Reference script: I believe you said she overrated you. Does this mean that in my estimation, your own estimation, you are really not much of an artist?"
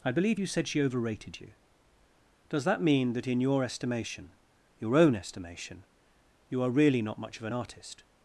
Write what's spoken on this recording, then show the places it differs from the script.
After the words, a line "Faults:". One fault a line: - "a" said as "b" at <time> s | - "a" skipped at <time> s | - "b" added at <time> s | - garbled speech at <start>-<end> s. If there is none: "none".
I believe you said she overrated you. Does that mean that in your estimation, your own estimation, you are really not much of an artist?"
Faults:
- "this" said as "that" at 2.6 s
- "my" said as "your" at 3.4 s